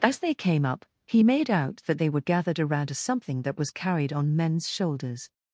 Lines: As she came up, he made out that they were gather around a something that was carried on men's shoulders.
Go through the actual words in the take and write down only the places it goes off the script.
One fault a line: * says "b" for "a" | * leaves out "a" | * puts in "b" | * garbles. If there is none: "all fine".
* says "they" for "she"
* says "gathered" for "gather"